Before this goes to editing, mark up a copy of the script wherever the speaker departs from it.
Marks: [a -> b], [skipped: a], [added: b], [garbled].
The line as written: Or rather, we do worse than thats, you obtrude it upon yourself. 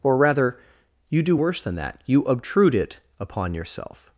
Or rather, [we -> you] do worse than [thats, -> that] you obtrude it upon yourself.